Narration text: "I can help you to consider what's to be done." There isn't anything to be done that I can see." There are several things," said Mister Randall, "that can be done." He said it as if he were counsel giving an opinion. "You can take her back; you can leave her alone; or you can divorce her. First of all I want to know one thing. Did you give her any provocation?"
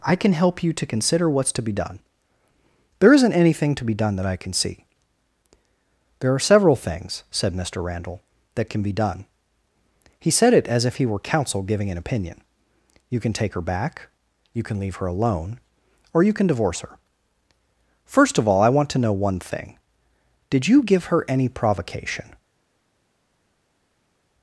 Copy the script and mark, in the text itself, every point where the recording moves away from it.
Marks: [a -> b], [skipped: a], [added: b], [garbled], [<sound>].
"I can help you to consider what's to be done." There isn't anything to be done that I can see." There are several things," said Mister Randall, "that can be done." He said it as if he were counsel giving an opinion. "You can take her back; you can leave her alone; or you can divorce her. First of all I want to know one thing. Did you give her any provocation?"